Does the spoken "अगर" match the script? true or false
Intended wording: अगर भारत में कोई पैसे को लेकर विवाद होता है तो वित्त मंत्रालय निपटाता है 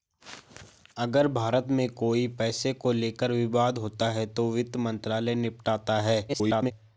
true